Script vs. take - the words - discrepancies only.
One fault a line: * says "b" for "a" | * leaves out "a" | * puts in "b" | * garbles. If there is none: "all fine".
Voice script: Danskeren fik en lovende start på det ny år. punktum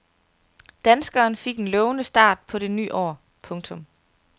all fine